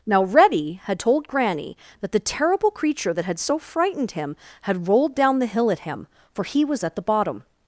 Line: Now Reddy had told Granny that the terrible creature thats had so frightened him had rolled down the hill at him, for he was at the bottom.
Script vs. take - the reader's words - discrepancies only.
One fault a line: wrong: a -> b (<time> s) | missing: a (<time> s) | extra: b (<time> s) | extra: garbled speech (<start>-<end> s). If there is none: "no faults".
wrong: thats -> that (3.1 s)